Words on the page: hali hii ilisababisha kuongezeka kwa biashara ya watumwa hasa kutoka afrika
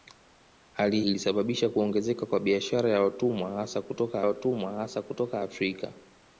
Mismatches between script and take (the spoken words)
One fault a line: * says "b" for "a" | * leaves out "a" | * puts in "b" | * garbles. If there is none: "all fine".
* leaves out "hii"
* puts in "watumwa hasa kutoka"